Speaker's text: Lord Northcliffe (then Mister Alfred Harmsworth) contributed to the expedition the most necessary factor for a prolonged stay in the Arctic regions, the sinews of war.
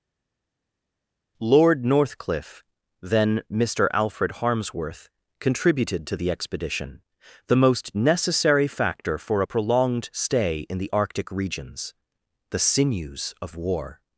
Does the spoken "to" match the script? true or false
true